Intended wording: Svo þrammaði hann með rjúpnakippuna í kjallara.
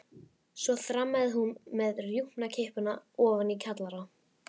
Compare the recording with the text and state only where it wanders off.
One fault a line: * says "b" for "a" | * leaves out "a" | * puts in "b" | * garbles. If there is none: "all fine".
* says "hún" for "hann"
* puts in "ofan"